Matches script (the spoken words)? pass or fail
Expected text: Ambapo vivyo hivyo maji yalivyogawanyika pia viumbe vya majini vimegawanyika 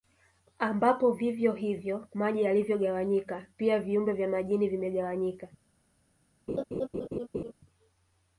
pass